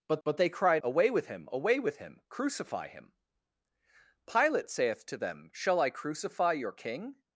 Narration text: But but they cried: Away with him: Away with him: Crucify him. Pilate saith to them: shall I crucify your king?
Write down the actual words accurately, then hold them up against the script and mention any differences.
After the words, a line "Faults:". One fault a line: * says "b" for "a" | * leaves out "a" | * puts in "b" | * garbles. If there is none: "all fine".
But but they cried: Away with him: Away with him: Crucify him. Pilate saith to them: shall I crucify your king?
Faults:
all fine